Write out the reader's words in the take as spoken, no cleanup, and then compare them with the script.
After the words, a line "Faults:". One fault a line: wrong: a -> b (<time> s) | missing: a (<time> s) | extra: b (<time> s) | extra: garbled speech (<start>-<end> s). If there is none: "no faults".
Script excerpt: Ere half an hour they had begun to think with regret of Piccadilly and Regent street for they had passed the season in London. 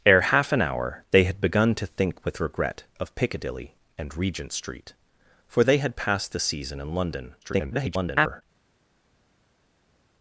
Ere half an hour they had begun to think with regret of Piccadilly and Regent street for they had passed the season in London. [garbled]
Faults:
extra: garbled speech (7.4-8.4 s)